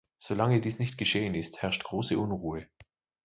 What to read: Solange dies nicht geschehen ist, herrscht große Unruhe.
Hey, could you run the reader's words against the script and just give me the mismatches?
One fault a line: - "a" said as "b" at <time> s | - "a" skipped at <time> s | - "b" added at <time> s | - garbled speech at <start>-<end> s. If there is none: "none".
none